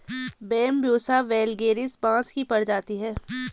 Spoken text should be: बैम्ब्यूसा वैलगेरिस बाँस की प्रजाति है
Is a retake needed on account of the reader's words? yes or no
no